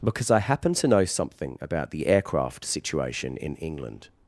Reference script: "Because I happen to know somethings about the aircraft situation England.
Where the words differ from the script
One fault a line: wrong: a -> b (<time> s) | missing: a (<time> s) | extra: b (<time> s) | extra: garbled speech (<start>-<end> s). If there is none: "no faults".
wrong: somethings -> something (1.1 s)
extra: in (3.4 s)